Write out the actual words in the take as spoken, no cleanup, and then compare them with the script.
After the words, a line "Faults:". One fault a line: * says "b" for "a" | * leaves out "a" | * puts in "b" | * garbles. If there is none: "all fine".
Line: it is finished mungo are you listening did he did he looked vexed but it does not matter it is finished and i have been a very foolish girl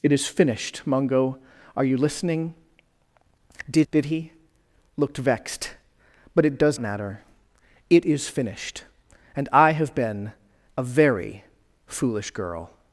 it is finished mungo are you listening did did he looked vexed but it does matter it is finished and i have been a very foolish girl
Faults:
* leaves out "he"
* leaves out "not"